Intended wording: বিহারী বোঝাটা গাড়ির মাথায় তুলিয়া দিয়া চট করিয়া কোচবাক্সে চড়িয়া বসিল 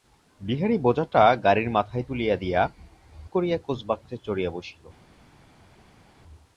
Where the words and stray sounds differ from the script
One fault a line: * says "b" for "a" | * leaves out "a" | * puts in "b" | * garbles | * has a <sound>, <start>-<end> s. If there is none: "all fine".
* leaves out "চট"